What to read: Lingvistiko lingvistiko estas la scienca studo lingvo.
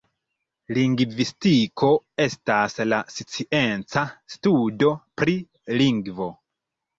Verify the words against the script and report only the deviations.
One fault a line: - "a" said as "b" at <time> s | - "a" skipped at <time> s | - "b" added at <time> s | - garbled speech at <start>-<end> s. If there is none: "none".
- "lingvistiko" skipped at 1.9 s
- "pri" added at 5.2 s